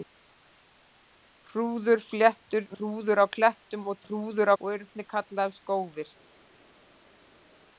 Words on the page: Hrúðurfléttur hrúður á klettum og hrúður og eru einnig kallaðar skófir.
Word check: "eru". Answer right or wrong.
right